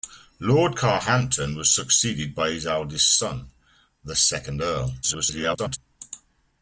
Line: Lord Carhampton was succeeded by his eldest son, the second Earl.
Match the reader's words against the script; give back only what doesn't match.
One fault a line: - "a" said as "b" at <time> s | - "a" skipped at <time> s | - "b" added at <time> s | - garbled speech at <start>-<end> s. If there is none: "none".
- garbled speech at 5.0-5.8 s